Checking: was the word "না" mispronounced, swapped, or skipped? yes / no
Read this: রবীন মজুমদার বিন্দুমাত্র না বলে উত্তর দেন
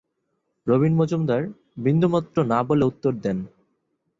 no